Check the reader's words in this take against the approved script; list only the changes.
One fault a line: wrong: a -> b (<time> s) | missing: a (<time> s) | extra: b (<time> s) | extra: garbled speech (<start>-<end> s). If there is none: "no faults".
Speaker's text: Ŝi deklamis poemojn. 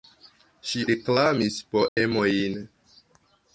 no faults